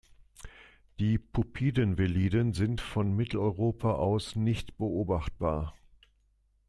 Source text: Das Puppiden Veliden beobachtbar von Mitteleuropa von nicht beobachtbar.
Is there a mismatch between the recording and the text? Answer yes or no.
yes